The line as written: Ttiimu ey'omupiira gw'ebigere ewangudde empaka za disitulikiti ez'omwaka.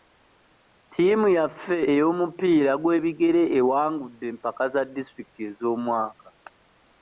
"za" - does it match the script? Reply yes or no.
yes